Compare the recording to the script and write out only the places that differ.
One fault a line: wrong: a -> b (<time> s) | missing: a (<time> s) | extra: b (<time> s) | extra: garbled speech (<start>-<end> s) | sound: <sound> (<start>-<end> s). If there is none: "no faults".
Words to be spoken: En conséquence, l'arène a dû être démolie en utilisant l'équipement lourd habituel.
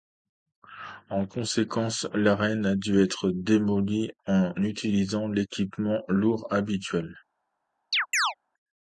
sound: chirp (7.9-8.3 s)